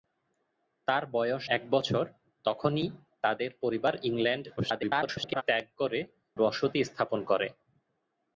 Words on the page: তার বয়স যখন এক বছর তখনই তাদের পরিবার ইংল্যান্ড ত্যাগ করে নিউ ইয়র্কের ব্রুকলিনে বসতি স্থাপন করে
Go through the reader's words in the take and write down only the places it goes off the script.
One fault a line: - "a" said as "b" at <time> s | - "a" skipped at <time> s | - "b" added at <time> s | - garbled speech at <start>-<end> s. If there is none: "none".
- "যখন" skipped at 1.4 s
- garbled speech at 4.6-5.4 s
- "নিউ ইয়র্কের ব্রুকলিনে" skipped at 6.0 s